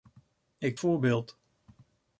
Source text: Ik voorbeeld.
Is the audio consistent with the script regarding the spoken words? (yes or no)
yes